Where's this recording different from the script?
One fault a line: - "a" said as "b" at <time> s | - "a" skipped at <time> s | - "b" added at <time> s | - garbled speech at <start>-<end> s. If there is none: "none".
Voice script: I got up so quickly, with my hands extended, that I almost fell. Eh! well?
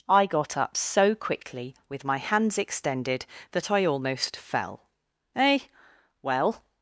none